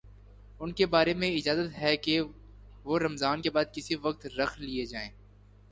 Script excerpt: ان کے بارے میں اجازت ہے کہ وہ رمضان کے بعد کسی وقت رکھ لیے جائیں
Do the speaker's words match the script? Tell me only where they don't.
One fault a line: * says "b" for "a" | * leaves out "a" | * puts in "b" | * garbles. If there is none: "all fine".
all fine